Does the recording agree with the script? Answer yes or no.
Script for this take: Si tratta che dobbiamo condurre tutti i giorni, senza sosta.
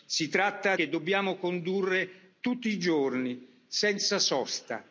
yes